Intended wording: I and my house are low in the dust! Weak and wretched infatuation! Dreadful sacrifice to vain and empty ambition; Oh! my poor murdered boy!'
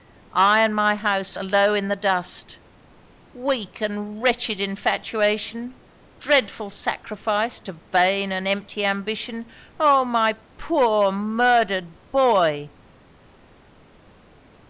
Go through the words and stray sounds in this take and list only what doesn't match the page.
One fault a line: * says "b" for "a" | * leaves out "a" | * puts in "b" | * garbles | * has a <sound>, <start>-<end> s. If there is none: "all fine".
all fine